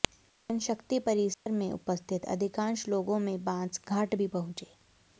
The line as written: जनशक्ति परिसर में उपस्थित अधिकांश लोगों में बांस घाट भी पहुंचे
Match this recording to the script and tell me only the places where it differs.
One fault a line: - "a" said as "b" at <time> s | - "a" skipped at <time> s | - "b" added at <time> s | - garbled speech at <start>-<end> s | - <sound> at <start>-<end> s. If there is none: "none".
- dropout at 1.3-1.5 s